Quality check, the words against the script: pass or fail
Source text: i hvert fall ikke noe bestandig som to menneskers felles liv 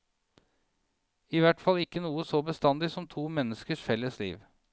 fail